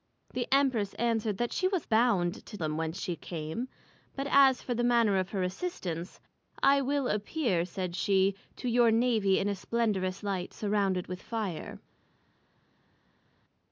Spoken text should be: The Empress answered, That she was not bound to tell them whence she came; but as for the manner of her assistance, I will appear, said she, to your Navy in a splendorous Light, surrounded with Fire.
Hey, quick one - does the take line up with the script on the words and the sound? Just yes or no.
no